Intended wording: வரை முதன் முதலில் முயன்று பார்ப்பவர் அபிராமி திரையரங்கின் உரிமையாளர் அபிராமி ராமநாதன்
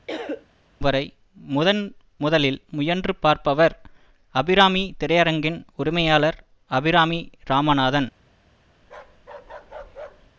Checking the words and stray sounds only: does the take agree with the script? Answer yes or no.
no